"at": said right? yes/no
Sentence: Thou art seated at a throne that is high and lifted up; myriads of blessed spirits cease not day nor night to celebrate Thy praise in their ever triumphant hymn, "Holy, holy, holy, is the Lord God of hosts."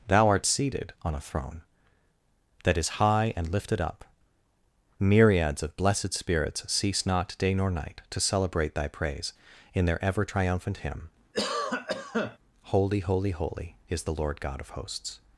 no